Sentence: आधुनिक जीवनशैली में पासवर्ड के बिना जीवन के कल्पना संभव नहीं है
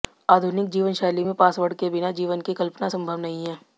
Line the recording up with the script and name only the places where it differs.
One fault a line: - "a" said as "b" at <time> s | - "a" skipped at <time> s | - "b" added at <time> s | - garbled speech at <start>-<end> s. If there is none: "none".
- "के" said as "की" at 2.4 s